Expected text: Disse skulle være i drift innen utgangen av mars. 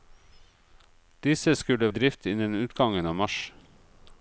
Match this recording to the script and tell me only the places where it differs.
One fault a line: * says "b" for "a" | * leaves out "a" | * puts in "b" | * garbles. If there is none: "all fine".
* leaves out "være"